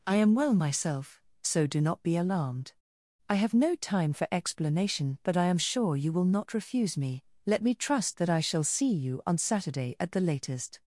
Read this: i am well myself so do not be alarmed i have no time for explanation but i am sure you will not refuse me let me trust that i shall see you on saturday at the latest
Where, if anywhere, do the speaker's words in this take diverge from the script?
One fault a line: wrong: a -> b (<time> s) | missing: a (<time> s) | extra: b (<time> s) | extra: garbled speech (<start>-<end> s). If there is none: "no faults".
no faults